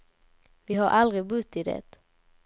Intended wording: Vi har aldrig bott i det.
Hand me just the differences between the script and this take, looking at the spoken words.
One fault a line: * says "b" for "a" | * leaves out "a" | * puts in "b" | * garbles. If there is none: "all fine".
all fine